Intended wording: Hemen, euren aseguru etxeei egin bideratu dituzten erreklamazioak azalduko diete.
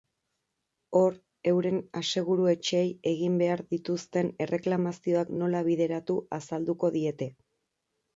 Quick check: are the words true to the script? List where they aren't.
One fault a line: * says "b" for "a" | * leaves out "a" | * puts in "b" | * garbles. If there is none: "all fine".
* says "Hor" for "Hemen"
* says "behar" for "bideratu"
* puts in "nola bideratu"